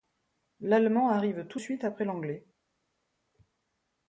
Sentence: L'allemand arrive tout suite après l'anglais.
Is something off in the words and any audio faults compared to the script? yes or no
no